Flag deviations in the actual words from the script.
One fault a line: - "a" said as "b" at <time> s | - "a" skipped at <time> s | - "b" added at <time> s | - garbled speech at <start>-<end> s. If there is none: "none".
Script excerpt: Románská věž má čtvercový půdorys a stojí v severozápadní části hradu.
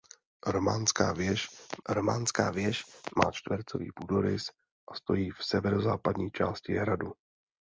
- "románská věž" added at 1.9 s